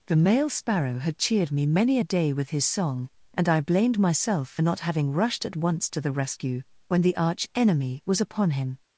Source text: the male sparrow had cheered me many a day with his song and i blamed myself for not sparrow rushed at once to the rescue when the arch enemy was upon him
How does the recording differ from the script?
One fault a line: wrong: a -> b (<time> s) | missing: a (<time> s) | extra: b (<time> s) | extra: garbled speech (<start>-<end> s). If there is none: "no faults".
wrong: sparrow -> having (4.8 s)